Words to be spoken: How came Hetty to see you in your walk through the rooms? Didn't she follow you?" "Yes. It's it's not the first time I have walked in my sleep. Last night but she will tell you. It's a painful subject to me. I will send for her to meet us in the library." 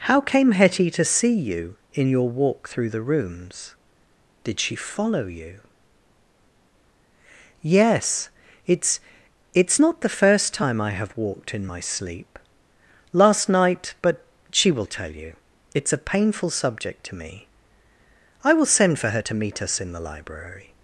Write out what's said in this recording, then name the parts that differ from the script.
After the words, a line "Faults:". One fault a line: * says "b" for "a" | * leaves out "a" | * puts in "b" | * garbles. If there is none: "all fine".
How came Hetty to see you in your walk through the rooms? Did she follow you?" "Yes. It's it's not the first time I have walked in my sleep. Last night but she will tell you. It's a painful subject to me. I will send for her to meet us in the library."
Faults:
* says "Did" for "Didn't"